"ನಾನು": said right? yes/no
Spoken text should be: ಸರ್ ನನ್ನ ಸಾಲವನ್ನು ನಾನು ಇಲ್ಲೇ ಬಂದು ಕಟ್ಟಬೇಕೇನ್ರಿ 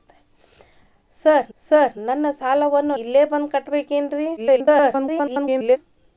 no